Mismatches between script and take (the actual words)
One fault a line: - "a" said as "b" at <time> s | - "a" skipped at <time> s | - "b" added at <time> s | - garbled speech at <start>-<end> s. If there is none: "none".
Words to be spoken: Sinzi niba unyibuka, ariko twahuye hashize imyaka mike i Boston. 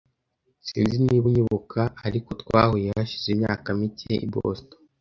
none